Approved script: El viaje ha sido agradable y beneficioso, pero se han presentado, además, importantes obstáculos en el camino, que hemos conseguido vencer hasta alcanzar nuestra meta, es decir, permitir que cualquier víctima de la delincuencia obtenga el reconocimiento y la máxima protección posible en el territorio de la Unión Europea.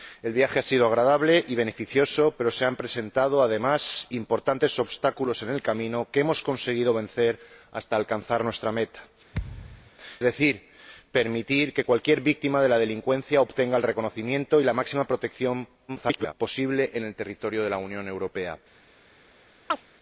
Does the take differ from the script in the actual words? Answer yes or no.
yes